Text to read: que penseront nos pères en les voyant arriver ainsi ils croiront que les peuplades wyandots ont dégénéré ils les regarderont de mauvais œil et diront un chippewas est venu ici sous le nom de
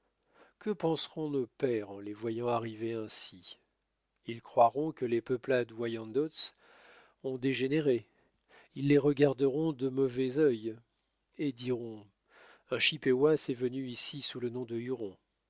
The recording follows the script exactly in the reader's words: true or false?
true